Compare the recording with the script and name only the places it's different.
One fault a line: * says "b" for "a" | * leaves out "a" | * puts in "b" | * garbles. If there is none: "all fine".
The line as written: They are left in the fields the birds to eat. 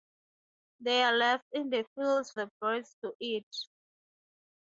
all fine